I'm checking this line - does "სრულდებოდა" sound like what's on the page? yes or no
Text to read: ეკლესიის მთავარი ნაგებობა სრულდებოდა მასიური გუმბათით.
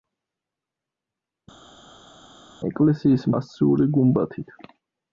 no